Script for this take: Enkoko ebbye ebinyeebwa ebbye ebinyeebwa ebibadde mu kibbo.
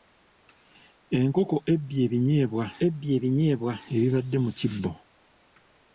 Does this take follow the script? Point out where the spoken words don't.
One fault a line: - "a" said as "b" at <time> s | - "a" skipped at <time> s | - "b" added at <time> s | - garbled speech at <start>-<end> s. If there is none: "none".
none